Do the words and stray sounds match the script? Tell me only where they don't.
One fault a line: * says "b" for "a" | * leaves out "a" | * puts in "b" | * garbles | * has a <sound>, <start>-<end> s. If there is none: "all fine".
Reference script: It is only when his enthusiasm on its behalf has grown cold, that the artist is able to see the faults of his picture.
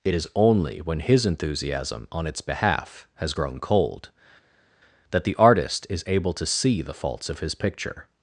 all fine